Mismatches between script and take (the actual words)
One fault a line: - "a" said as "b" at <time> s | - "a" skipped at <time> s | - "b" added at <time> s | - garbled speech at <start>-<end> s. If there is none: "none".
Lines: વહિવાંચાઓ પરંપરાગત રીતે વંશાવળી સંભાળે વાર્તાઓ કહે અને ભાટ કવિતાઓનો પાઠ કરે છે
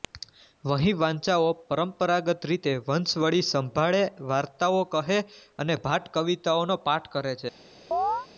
none